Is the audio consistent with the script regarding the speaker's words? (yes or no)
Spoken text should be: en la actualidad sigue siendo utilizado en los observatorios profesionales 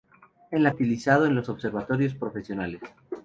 no